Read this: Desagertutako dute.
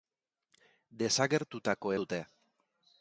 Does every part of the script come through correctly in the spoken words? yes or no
yes